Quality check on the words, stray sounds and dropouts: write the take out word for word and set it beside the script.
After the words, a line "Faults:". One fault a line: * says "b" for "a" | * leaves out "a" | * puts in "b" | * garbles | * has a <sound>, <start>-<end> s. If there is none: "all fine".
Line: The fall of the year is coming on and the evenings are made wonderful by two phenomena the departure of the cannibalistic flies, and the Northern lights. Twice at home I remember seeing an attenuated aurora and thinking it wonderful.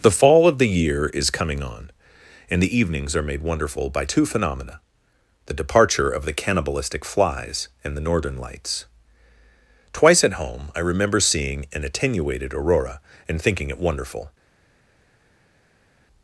The fall of the year is coming on and the evenings are made wonderful by two phenomena the departure of the cannibalistic flies, and the Northern lights. Twice at home I remember seeing an attenuated aurora and thinking it wonderful.
Faults:
all fine